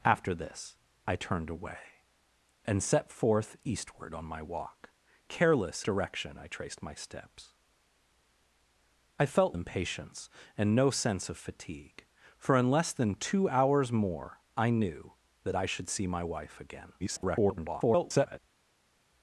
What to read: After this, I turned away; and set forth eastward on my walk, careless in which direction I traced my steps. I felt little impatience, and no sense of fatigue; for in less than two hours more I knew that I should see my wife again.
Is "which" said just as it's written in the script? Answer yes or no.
no